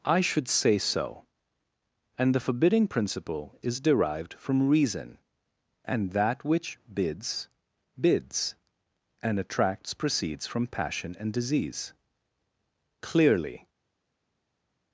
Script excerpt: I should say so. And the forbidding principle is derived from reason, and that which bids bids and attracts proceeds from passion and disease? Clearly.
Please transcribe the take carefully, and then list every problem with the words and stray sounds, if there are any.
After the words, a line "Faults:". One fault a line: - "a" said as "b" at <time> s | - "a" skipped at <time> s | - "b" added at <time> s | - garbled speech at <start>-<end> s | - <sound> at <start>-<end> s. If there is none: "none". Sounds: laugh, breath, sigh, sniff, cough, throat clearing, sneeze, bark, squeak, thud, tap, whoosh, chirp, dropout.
I should say so. And the forbidding principle is derived from reason, and that which bids bids and attracts proceeds from passion and disease? Clearly.
Faults:
none